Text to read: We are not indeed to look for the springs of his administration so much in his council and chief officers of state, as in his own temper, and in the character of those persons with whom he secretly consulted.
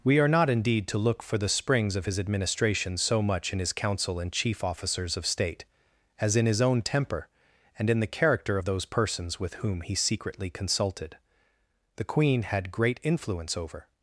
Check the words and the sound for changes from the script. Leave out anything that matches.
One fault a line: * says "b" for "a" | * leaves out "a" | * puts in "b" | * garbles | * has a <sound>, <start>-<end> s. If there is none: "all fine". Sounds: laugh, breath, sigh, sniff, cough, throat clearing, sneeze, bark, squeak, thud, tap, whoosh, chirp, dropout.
* puts in "The queen had great influence over"